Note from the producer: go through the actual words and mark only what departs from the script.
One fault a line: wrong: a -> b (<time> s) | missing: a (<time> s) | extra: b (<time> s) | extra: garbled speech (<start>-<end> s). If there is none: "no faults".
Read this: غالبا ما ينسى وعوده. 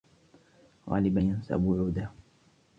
missing: ما (1.2 s)